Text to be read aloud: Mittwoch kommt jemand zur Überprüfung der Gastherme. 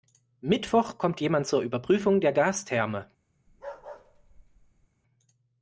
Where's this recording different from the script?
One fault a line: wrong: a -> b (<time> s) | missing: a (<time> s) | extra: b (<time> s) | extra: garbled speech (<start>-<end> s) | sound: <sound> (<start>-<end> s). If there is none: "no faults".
sound: bark (3.5-4.9 s)